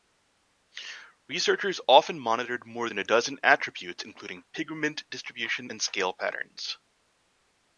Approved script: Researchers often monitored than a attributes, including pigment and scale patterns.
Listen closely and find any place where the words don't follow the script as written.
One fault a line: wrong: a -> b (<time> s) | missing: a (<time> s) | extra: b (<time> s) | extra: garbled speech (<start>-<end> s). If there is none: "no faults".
extra: more (2.6 s)
extra: dozen (3.0 s)
extra: distribution (5.1 s)